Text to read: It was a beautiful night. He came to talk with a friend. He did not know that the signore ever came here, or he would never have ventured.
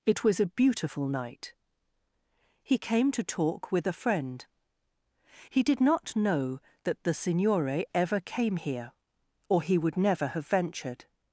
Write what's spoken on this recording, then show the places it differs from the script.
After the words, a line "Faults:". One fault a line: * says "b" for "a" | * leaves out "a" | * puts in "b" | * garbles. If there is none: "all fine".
It was a beautiful night. He came to talk with a friend. He did not know that the signore ever came here, or he would never have ventured.
Faults:
all fine